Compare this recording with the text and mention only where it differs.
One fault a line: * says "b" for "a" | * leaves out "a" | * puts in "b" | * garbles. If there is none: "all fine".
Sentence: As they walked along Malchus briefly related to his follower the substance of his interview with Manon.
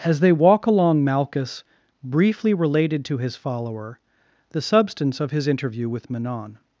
* says "walk" for "walked"